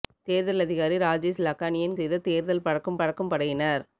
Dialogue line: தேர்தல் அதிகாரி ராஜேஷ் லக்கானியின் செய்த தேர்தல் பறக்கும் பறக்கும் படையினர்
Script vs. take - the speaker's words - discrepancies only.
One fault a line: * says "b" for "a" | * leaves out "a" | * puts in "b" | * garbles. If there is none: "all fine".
all fine